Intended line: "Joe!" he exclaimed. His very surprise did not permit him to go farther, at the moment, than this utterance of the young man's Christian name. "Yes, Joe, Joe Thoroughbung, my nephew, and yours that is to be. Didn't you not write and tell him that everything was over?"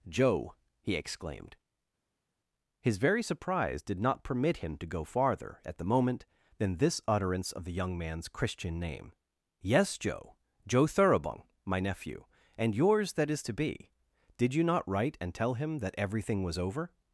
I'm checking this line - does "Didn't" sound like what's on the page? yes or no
no